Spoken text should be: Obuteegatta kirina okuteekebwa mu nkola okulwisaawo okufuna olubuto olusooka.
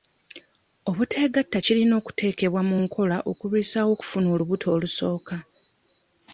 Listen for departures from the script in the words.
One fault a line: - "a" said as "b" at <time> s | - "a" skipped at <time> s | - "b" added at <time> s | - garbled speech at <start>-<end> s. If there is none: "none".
none